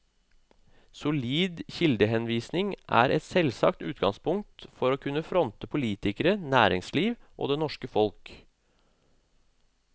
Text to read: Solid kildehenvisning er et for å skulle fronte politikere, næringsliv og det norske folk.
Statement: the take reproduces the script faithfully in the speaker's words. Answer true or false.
false